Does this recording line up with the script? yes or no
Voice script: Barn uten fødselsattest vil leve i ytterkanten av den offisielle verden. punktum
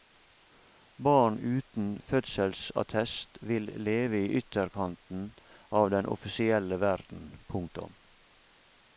yes